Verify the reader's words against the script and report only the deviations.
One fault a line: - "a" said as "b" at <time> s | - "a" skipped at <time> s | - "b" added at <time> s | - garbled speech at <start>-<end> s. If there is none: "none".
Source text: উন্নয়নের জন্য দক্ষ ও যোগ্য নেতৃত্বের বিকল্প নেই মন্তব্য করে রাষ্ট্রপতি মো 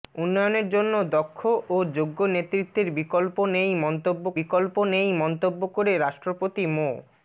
- "বিকল্প নেই মন্তব্য" added at 4.4 s